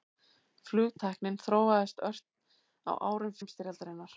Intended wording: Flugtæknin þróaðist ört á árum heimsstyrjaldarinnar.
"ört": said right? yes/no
yes